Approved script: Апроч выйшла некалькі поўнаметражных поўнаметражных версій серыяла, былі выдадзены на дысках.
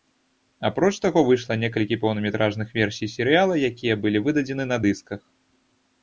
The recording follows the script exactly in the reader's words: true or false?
false